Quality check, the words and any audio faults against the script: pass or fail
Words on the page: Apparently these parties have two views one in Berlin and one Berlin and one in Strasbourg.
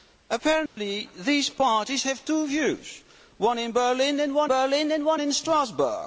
fail